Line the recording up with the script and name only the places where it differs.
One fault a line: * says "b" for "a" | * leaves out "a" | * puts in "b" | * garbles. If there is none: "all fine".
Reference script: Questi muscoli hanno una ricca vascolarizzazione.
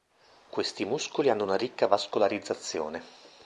all fine